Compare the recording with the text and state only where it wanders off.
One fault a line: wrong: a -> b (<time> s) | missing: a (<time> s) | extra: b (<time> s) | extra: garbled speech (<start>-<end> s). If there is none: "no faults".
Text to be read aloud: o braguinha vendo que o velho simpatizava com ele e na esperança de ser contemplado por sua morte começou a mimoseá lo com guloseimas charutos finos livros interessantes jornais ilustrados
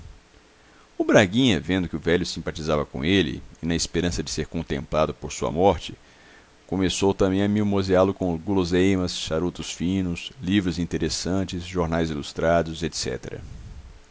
extra: também (7.1 s)